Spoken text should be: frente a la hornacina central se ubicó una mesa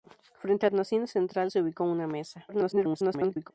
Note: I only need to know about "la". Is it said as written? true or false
false